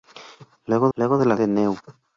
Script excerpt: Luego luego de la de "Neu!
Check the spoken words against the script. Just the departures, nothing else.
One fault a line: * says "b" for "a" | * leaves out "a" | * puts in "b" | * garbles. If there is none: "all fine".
all fine